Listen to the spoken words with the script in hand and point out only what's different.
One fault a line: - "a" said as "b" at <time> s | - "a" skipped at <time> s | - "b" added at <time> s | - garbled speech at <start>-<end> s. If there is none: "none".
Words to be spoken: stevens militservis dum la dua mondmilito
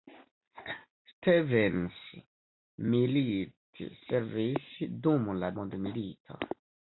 - "dua" skipped at 5.6 s